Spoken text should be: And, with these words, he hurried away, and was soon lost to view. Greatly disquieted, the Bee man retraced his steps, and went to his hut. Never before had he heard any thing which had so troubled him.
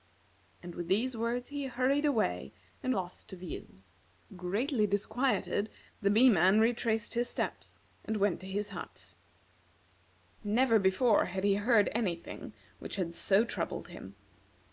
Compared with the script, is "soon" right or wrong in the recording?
wrong